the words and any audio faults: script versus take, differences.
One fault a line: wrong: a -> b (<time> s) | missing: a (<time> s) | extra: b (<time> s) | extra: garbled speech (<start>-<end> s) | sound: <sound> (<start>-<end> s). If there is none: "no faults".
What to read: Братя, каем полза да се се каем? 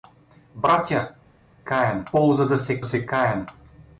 no faults